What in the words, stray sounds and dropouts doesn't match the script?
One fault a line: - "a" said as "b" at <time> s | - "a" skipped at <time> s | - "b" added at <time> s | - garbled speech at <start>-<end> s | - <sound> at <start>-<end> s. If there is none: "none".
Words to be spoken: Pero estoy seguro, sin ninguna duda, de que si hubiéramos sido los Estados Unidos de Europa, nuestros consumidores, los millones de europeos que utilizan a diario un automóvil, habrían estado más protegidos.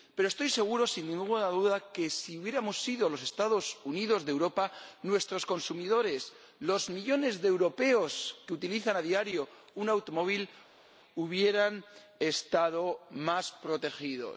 none